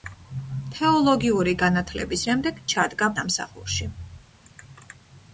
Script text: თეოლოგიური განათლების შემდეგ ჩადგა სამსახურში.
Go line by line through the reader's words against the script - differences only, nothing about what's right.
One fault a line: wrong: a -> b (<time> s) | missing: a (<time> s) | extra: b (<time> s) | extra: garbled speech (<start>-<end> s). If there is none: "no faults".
no faults